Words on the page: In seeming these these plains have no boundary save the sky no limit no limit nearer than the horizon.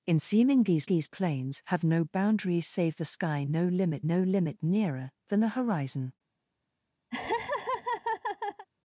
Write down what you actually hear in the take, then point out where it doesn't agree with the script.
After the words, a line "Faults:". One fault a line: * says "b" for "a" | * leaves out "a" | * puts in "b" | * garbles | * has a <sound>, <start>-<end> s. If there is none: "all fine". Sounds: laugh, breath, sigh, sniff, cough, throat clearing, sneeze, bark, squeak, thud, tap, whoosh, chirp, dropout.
In seeming these these plains have no boundary save the sky no limit no limit nearer than the horizon.
Faults:
* has a laugh, 7.1-8.7 s